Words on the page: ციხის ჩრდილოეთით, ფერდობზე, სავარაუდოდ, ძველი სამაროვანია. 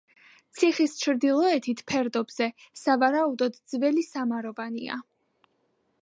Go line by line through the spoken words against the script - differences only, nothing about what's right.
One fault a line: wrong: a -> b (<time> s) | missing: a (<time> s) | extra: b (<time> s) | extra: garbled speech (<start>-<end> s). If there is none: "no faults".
no faults